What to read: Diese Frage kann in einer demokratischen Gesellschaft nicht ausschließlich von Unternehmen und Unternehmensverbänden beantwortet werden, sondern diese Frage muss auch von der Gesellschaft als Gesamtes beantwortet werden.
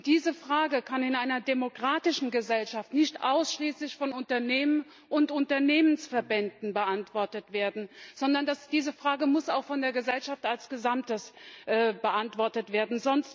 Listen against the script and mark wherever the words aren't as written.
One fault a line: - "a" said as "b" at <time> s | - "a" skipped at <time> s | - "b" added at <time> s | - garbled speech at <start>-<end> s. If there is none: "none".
none